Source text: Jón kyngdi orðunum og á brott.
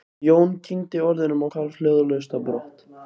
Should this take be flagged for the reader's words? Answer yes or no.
yes